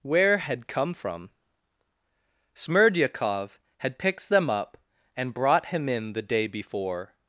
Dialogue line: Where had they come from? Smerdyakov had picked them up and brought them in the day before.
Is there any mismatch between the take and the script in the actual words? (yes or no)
yes